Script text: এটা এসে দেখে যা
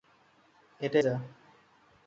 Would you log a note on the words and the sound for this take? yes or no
yes